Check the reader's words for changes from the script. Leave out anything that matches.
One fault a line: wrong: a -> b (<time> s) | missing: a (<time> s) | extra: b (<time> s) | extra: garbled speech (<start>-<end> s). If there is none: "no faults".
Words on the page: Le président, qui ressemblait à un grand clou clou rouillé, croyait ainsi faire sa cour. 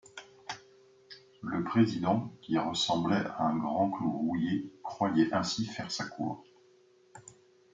missing: clou (4.1 s)